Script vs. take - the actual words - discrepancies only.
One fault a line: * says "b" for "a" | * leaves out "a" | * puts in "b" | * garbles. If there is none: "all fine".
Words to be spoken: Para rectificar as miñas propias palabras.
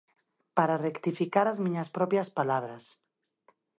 all fine